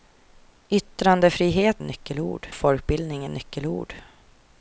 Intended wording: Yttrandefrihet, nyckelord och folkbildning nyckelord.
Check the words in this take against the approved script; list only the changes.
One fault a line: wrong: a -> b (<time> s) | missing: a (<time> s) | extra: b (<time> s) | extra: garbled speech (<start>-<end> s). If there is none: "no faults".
no faults